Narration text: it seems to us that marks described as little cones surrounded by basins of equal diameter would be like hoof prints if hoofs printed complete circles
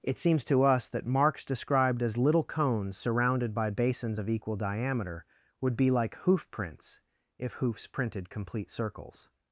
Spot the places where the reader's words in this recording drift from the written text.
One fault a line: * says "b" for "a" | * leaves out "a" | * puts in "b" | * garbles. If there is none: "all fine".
all fine